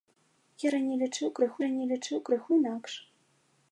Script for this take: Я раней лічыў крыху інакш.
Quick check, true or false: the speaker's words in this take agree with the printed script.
false